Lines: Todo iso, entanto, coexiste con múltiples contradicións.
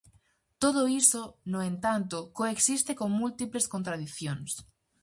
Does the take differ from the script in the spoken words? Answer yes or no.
yes